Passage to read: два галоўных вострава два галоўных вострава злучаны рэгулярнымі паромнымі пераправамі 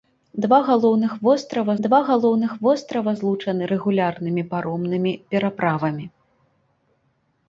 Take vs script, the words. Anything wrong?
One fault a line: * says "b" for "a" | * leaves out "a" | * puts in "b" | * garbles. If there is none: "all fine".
all fine